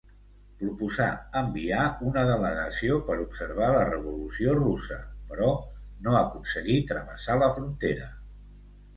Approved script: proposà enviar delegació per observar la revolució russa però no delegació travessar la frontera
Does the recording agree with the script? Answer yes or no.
no